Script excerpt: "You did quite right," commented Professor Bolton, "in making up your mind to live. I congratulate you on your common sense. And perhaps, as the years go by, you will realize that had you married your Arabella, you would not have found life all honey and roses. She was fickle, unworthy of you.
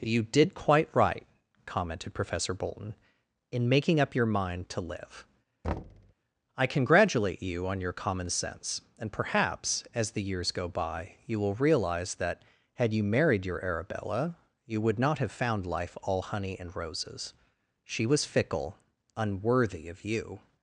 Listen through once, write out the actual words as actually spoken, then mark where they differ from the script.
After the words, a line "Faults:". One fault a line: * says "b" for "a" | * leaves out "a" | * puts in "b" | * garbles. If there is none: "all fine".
"You did quite right," commented Professor Bolton, "in making up your mind to live. I congratulate you on your common sense. And perhaps, as the years go by, you will realize that had you married your Arabella, you would not have found life all honey and roses. She was fickle, unworthy of you.
Faults:
all fine